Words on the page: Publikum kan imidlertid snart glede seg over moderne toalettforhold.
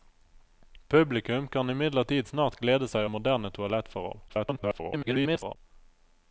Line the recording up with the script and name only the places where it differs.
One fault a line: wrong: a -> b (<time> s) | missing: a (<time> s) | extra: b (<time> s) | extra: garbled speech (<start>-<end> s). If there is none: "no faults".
missing: over (3.0 s)
extra: garbled speech (4.3-5.6 s)